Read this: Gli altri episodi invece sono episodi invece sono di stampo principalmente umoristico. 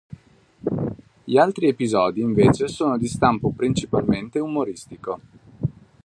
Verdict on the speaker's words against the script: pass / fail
fail